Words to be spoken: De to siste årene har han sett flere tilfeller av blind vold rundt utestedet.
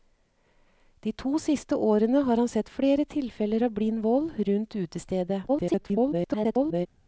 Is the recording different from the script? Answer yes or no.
yes